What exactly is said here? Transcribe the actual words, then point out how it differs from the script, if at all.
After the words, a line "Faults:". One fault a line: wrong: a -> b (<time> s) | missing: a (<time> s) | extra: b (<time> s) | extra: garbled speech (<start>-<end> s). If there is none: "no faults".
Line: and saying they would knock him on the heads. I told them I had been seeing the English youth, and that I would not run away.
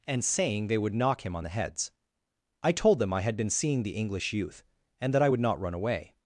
and saying they would knock him on the heads. I told them I had been seeing the English youth, and that I would not run away.
Faults:
no faults